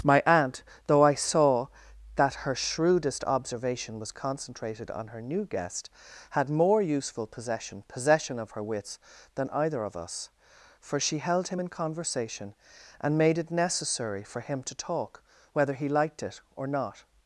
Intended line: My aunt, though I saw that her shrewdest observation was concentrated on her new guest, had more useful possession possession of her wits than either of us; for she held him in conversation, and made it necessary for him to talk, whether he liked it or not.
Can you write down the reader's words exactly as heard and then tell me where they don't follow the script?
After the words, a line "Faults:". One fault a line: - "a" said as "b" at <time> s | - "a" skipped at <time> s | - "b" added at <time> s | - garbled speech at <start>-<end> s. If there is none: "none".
My aunt, though I saw that her shrewdest observation was concentrated on her new guest, had more useful possession possession of her wits than either of us; for she held him in conversation, and made it necessary for him to talk, whether he liked it or not.
Faults:
none